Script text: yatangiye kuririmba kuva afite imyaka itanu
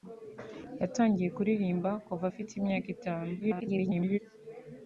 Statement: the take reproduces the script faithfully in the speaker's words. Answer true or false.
false